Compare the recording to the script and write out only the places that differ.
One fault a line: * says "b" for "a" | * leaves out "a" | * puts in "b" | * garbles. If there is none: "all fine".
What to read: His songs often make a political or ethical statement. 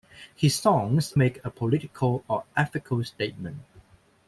* leaves out "often"